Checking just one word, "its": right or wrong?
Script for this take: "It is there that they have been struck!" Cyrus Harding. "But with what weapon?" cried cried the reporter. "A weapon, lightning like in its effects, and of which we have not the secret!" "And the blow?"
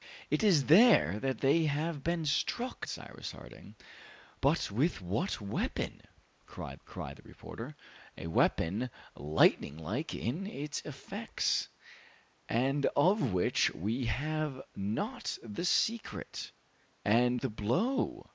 right